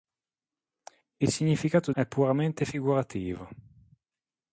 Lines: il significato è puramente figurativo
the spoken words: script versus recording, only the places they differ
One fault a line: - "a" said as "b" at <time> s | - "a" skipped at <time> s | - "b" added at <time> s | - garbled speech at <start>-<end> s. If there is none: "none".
none